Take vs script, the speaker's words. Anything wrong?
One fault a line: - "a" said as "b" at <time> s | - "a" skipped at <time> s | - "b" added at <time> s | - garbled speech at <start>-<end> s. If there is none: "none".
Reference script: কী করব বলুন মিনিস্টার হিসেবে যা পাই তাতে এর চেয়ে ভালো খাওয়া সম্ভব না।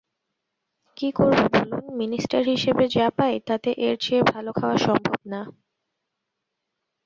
none